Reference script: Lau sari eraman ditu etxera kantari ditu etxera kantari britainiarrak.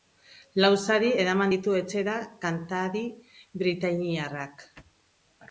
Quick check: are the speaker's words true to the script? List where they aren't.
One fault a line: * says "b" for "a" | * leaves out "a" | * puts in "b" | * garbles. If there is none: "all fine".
* leaves out "ditu etxera kantari"